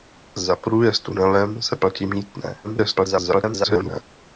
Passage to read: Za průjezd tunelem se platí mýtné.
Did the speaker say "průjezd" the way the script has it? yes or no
yes